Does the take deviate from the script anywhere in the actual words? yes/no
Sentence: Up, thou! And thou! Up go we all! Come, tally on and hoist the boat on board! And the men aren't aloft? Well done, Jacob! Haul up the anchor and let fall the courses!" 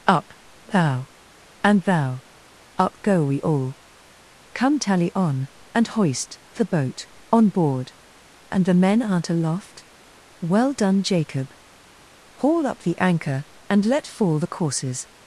no